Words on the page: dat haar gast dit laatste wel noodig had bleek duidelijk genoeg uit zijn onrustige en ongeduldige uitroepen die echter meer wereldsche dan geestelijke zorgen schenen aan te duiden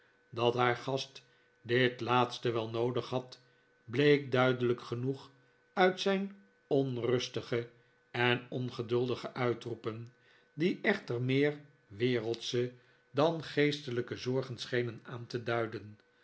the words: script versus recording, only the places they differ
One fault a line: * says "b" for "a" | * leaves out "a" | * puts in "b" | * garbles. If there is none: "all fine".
all fine